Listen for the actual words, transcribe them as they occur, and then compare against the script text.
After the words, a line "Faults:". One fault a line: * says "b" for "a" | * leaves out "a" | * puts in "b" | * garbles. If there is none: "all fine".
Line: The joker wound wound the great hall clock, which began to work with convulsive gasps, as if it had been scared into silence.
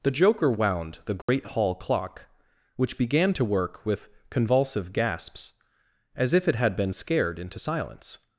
The joker wound the great hall clock, which began to work with convulsive gasps, as if it had been scared into silence.
Faults:
* leaves out "wound"